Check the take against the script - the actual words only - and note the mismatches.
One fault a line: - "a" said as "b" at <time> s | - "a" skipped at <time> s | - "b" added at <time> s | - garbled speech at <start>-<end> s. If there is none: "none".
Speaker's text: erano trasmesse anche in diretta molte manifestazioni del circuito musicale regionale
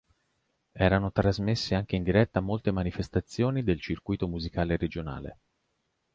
none